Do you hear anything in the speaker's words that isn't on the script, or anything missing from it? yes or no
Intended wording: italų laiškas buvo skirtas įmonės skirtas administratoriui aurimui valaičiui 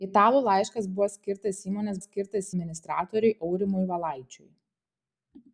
no